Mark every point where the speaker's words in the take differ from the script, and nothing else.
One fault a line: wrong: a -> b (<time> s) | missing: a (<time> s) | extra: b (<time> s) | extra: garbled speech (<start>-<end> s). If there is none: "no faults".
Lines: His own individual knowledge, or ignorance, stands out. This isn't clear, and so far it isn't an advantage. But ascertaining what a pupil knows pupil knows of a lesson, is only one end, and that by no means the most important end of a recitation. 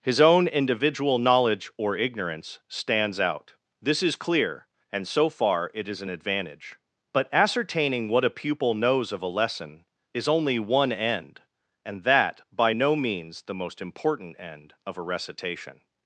wrong: isn't -> is (4.0 s)
wrong: isn't -> is (5.9 s)
missing: pupil knows (9.1 s)